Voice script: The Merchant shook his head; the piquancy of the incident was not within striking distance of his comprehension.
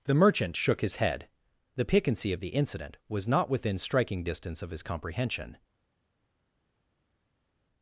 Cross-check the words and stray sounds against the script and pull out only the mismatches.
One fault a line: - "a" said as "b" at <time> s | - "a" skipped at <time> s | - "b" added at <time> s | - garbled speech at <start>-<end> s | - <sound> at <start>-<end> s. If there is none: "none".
none